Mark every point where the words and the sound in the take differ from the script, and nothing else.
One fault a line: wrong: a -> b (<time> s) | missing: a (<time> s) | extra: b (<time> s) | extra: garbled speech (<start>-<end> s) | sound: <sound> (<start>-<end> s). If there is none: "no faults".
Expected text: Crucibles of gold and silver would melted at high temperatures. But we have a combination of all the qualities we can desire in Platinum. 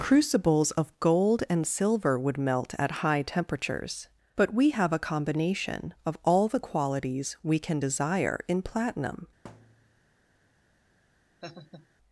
wrong: melted -> melt (2.4 s)
sound: thud (9.4-10.0 s)
sound: laugh (11.4-11.9 s)